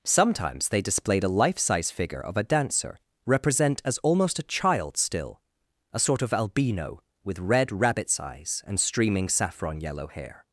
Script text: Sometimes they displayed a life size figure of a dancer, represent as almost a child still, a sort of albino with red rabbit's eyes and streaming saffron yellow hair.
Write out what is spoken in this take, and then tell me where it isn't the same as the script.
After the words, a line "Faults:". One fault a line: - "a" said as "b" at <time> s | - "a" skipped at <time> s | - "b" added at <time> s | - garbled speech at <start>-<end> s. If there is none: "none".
Sometimes they displayed a life size figure of a dancer, represent as almost a child still, a sort of albino with red rabbit's eyes and streaming saffron yellow hair.
Faults:
none